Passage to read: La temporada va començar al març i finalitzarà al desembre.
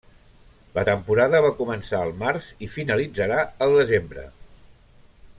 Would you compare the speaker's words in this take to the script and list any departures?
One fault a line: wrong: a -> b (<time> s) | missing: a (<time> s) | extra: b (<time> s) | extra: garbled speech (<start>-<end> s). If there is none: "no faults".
no faults